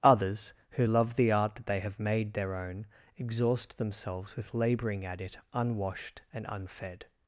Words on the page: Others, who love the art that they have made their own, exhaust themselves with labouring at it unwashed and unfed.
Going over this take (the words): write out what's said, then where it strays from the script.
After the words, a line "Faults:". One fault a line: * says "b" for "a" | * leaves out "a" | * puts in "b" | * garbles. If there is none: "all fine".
Others, who love the art that they have made their own, exhaust themselves with labouring at it unwashed and unfed.
Faults:
all fine